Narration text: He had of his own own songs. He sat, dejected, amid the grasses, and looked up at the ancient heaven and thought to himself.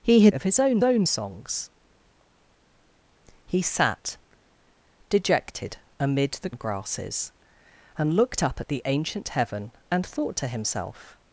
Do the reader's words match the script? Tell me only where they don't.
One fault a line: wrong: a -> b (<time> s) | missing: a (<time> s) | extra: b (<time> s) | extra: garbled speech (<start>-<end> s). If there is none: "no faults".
no faults